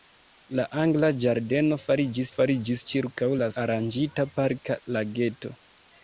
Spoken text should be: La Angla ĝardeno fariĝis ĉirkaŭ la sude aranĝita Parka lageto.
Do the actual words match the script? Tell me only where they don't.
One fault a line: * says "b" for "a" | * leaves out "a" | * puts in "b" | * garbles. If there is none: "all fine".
* puts in "fariĝis"
* leaves out "sude"